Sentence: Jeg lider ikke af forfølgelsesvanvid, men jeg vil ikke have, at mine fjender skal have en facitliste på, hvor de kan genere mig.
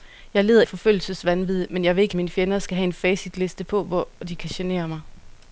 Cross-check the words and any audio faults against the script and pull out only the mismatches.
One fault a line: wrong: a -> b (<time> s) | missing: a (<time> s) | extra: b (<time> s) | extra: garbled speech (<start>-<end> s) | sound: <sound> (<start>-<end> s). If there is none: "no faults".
missing: ikke (0.6 s)
missing: have at (2.2 s)